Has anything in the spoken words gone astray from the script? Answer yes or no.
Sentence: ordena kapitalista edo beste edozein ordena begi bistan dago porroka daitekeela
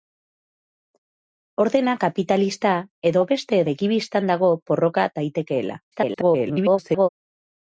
yes